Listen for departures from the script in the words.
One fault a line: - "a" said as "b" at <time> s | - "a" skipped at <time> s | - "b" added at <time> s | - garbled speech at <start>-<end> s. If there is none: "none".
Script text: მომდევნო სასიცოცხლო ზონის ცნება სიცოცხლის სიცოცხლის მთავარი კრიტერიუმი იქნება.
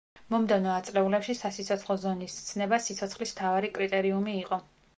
- "ათწლეულებში" added at 0.8 s
- "სიცოცხლის" skipped at 3.4 s
- "იქნება" said as "იყო" at 4.4 s